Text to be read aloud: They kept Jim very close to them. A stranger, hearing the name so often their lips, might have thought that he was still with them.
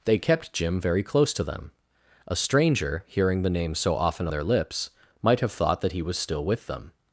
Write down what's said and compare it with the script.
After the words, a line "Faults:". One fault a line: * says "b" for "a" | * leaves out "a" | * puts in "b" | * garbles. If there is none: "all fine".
They kept Jim very close to them. A stranger, hearing the name so often their lips, might have thought that he was still with them.
Faults:
all fine